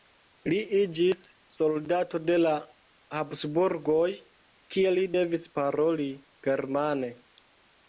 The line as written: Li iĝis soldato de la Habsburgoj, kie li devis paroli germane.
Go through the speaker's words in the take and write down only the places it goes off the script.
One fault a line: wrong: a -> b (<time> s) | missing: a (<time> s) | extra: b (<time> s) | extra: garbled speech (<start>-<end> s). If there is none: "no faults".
no faults